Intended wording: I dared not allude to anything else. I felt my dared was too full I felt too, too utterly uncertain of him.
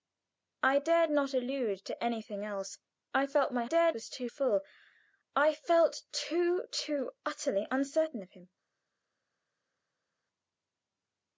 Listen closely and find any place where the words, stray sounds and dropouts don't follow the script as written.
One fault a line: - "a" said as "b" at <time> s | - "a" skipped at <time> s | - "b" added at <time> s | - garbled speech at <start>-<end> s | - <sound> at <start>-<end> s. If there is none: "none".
none